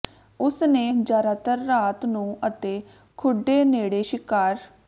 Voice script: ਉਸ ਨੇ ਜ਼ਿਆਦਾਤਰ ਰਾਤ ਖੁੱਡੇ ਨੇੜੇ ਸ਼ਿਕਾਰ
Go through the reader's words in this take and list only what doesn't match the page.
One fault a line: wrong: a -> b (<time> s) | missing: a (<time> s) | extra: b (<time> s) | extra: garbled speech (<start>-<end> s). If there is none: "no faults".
extra: ਨੂੰ ਅਤੇ (2.1 s)